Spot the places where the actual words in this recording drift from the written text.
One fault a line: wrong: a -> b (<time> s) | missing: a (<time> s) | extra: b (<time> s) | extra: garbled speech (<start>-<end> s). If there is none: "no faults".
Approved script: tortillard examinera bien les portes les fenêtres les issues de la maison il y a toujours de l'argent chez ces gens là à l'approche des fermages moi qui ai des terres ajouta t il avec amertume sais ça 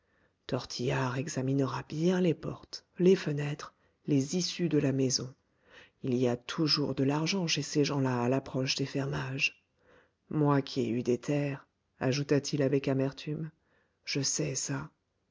extra: eu (10.9 s)
extra: je (14.0 s)